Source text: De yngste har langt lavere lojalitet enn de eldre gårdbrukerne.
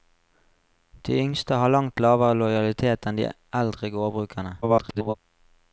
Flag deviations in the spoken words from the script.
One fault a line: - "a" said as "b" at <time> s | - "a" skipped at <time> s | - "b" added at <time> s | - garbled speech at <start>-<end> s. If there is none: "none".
- garbled speech at 4.6-5.2 s